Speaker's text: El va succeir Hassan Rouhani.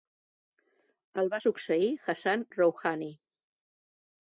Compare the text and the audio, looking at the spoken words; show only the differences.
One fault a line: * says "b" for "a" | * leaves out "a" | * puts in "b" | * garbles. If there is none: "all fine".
all fine